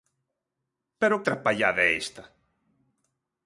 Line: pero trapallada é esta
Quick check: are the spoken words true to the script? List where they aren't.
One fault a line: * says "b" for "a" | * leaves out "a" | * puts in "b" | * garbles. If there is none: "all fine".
all fine